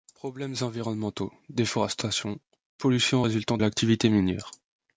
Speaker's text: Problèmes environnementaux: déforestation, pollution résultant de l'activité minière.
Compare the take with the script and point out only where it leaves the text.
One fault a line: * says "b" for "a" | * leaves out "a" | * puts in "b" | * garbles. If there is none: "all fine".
* leaves out "de"